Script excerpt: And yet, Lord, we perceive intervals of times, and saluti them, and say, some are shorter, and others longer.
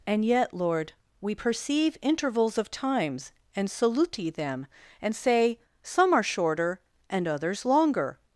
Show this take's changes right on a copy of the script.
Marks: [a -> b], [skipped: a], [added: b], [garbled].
And yet, Lord, we perceive intervals of times, and saluti them, and say, some are shorter, and others longer.